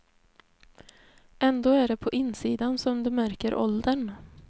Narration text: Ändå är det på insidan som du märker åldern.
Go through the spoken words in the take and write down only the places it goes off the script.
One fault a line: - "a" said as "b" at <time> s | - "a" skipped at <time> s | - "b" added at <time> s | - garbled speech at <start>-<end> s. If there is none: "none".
none